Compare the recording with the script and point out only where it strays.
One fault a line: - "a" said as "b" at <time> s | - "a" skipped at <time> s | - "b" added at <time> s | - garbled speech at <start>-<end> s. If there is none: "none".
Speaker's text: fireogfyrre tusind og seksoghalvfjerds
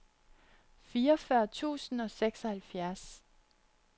none